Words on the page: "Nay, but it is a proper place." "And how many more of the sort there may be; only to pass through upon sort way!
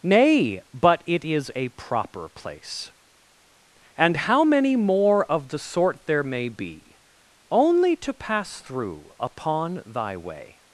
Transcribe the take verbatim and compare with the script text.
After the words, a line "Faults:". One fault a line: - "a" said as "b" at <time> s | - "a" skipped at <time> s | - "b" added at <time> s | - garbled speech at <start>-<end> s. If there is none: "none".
"Nay, but it is a proper place." "And how many more of the sort there may be; only to pass through upon thy way!
Faults:
- "sort" said as "thy" at 9.9 s